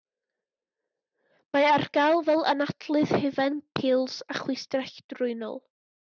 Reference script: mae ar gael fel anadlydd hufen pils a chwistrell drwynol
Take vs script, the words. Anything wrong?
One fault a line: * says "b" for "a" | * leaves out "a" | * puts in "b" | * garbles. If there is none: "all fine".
all fine